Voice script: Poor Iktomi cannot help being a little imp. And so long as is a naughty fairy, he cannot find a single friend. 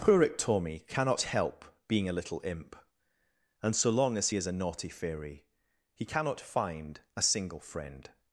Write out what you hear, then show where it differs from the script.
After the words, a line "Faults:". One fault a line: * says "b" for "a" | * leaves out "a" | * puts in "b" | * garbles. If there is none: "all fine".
Poor Iktomi cannot help being a little imp. And so long as is a naughty fairy, he cannot find a single friend.
Faults:
all fine